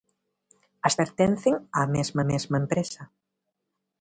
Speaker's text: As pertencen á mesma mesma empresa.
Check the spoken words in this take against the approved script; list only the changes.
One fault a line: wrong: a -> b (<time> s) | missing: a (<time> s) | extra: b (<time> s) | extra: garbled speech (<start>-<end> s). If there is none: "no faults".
no faults